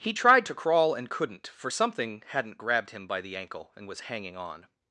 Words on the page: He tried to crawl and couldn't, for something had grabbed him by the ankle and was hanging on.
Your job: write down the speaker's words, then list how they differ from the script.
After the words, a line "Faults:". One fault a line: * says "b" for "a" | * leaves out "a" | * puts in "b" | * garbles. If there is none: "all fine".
He tried to crawl and couldn't, for something hadn't grabbed him by the ankle and was hanging on.
Faults:
* says "hadn't" for "had"